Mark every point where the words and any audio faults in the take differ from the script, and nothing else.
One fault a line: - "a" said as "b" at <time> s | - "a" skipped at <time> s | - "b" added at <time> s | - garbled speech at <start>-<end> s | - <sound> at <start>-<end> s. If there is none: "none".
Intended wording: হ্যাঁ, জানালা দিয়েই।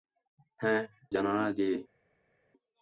none